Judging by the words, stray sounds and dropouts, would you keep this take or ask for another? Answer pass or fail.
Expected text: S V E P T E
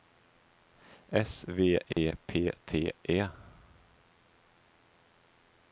fail